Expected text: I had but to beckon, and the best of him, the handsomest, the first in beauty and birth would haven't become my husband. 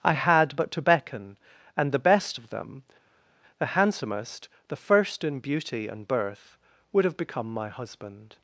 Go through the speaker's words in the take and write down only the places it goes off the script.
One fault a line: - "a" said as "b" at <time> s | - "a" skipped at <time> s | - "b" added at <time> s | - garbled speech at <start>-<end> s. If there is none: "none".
- "him" said as "them" at 2.5 s
- "haven't" said as "have" at 7.0 s